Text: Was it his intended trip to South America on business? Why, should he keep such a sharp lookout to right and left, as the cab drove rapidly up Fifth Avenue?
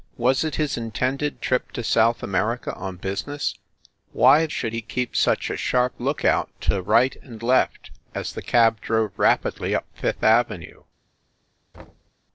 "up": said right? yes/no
yes